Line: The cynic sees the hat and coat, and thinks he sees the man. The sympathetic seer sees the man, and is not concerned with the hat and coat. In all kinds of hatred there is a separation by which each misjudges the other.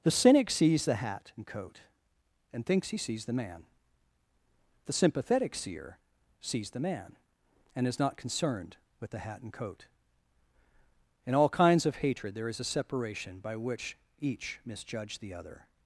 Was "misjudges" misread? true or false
true